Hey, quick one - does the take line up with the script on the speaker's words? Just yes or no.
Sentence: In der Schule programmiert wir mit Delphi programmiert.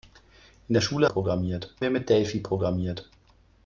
yes